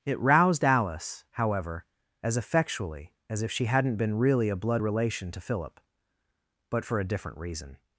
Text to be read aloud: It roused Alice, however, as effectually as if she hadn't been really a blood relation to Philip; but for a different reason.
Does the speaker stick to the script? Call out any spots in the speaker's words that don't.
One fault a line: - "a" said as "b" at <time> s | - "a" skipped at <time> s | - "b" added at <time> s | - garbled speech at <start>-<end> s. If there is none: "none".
none